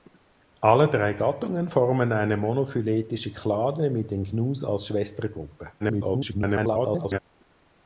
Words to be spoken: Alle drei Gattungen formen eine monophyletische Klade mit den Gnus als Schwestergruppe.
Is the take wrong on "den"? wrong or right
right